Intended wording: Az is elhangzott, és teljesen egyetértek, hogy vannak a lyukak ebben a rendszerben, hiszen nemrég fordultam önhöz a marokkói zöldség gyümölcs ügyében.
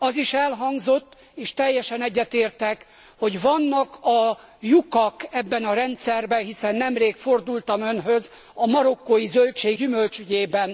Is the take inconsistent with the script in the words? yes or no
no